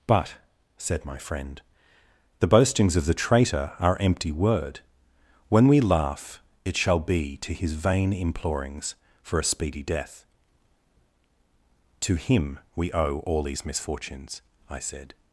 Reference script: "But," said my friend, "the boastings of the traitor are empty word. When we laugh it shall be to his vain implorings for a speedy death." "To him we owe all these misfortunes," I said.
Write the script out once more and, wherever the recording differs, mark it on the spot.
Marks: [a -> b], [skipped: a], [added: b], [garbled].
"But," said my friend, "the boastings of the traitor are empty word. When we laugh it shall be to his vain implorings for a speedy death." "To him we owe all these misfortunes," I said.